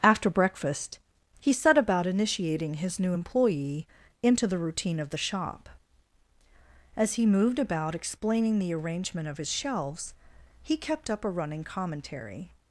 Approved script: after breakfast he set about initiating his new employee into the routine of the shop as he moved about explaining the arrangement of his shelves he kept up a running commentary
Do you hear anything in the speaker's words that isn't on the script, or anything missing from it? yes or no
no